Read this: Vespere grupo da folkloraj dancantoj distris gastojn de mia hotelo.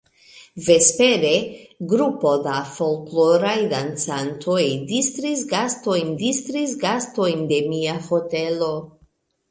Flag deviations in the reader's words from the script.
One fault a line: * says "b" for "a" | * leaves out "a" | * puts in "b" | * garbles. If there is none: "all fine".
* puts in "distris gastojn"